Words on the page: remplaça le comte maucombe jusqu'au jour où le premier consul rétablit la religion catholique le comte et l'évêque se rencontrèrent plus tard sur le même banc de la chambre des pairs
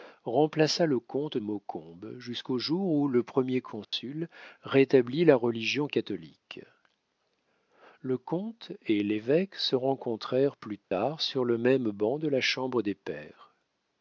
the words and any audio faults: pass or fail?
fail